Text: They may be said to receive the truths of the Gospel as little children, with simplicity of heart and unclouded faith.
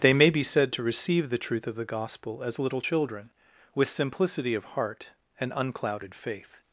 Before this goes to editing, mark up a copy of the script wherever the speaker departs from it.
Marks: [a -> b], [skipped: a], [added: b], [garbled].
They may be said to receive the [truths -> truth] of the Gospel as little children, with simplicity of heart and unclouded faith.